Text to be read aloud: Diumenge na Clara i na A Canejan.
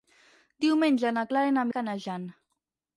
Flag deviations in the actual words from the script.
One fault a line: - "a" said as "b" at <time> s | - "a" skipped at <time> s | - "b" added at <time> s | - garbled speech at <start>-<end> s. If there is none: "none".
none